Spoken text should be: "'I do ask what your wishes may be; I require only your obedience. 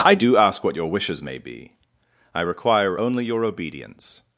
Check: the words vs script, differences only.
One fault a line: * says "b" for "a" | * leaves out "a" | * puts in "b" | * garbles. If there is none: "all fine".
all fine